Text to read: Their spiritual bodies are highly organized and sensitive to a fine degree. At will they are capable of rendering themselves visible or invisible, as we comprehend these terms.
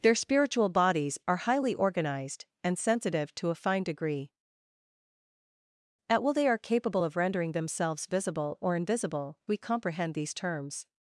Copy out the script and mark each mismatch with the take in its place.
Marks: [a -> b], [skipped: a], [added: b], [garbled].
Their spiritual bodies are highly organized and sensitive to a fine degree. At will they are capable of rendering themselves visible or invisible, [skipped: as] we comprehend these terms.